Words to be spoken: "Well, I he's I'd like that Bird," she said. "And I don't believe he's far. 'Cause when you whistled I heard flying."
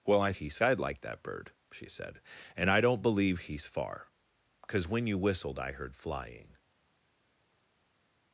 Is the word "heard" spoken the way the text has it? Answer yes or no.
yes